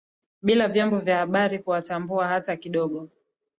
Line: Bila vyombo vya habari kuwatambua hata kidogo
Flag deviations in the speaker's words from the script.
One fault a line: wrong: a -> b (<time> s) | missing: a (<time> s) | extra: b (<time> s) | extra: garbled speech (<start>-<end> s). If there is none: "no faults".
no faults